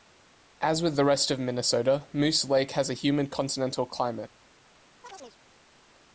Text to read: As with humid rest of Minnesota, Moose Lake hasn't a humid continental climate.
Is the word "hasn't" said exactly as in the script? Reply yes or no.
no